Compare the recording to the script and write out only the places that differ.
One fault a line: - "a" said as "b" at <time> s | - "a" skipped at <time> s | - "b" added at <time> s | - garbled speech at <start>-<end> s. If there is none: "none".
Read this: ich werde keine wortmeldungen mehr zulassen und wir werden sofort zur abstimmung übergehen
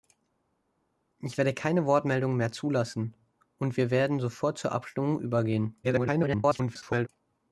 - garbled speech at 5.8-7.1 s